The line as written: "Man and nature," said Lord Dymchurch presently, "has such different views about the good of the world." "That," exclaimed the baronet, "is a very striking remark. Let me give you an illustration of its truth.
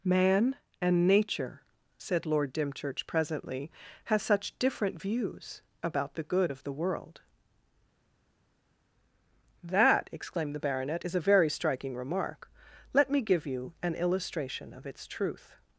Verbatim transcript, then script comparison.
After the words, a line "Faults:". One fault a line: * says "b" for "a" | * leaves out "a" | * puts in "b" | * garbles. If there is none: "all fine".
"Man and nature," said Lord Dymchurch presently, "has such different views about the good of the world." "That," exclaimed the baronet, "is a very striking remark. Let me give you an illustration of its truth.
Faults:
all fine